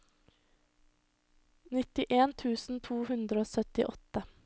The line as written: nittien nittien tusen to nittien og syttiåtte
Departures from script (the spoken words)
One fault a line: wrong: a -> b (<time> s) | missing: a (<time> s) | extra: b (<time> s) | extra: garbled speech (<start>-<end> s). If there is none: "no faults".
missing: nittien (2.3 s)
wrong: nittien -> hundre (3.1 s)